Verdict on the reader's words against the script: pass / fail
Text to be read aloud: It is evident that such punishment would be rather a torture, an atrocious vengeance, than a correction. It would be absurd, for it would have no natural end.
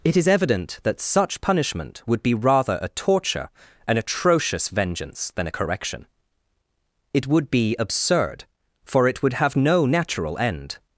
pass